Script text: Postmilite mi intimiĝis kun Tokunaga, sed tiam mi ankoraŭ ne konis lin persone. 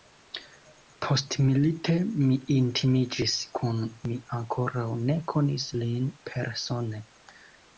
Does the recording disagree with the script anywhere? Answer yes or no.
yes